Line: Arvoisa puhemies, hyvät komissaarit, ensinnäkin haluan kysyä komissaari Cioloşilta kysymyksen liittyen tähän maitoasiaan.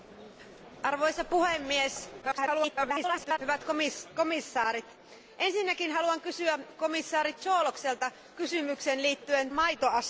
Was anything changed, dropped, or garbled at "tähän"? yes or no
yes